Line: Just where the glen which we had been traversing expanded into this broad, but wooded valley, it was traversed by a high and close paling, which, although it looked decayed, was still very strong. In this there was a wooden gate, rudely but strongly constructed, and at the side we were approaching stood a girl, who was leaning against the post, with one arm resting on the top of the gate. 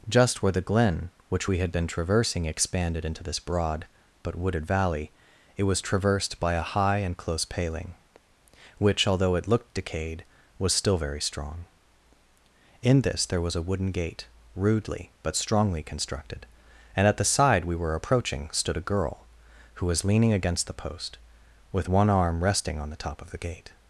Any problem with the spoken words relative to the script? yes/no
no